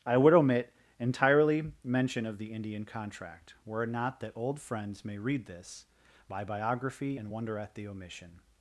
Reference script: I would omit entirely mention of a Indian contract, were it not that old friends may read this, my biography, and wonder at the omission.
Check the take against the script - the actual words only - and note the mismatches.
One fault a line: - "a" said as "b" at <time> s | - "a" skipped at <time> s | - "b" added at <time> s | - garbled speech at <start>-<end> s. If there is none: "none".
- "a" said as "the" at 2.4 s